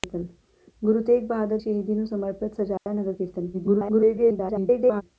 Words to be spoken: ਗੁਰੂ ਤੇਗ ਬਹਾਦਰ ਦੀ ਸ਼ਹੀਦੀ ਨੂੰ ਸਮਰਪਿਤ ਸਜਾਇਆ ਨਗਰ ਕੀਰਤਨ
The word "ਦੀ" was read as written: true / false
false